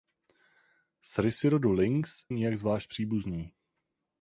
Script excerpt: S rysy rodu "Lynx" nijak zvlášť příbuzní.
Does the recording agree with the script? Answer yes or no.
yes